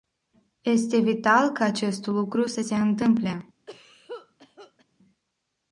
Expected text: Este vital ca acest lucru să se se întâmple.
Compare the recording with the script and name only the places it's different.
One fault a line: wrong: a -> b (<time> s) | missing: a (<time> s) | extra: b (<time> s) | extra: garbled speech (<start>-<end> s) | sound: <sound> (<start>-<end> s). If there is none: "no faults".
missing: se (2.7 s)
sound: cough (3.7-4.8 s)